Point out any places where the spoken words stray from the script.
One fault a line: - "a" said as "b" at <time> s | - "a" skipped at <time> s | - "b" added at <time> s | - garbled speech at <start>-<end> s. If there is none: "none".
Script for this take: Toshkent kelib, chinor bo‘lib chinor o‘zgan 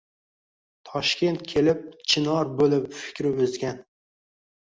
- "chinor" said as "fikri" at 3.0 s